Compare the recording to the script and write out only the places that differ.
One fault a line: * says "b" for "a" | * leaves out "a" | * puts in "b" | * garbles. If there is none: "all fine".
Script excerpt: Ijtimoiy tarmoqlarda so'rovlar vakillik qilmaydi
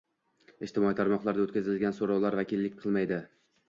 * puts in "o'tkazilgan"